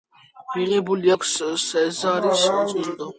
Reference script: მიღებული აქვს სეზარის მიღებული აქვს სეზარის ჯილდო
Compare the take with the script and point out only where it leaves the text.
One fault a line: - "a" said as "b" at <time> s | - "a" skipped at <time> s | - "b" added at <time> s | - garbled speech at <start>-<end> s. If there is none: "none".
- "მიღებული აქვს სეზარის" skipped at 2.4 s